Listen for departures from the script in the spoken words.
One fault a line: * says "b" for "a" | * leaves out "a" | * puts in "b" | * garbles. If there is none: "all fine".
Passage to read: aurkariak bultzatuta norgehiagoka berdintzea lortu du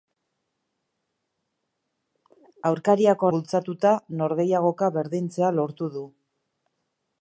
all fine